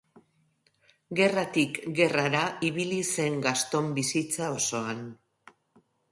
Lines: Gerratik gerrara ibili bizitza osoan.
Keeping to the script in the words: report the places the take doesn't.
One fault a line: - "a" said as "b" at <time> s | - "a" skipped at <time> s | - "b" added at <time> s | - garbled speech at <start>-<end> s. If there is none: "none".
- "zen Gaston" added at 3.2 s